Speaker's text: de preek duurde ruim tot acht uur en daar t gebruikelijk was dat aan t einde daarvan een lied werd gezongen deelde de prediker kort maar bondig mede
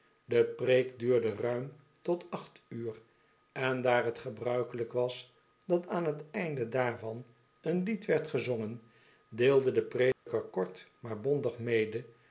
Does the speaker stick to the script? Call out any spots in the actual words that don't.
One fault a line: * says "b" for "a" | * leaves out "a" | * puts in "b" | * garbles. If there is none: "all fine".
all fine